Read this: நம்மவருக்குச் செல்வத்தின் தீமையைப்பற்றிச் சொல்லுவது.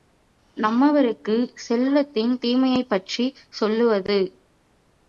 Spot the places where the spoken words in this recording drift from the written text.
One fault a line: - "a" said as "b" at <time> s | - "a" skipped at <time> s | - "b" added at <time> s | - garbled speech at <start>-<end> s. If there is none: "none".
none